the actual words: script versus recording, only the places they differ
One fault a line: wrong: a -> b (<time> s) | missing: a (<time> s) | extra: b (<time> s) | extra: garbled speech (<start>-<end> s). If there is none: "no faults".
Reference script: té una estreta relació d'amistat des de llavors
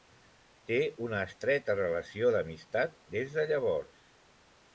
no faults